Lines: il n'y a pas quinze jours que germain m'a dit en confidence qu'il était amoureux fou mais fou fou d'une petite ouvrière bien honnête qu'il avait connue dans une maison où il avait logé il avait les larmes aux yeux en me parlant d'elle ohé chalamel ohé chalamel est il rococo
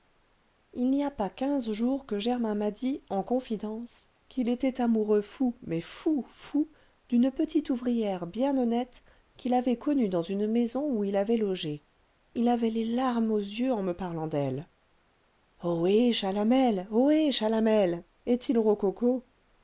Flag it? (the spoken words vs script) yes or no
no